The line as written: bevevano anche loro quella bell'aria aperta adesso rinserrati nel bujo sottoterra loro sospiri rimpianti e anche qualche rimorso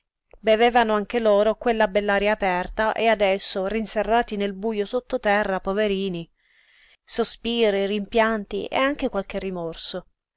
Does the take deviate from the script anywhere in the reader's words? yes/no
yes